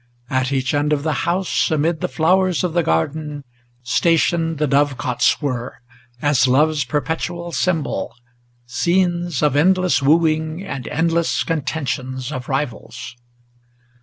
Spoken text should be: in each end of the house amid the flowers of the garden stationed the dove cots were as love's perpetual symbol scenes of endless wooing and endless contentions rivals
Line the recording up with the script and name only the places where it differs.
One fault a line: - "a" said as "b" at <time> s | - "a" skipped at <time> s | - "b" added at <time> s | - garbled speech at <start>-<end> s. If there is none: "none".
- "in" said as "at" at 0.3 s
- "of" added at 12.3 s